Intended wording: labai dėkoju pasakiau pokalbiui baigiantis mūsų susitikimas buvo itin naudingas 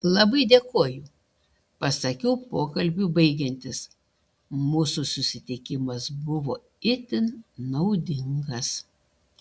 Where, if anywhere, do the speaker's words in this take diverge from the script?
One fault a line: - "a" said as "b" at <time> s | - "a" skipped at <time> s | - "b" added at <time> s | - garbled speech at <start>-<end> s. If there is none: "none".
none